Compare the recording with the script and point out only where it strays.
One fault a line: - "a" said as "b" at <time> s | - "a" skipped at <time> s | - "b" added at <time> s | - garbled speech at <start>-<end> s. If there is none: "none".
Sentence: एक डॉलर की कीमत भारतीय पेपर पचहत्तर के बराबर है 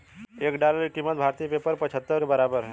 none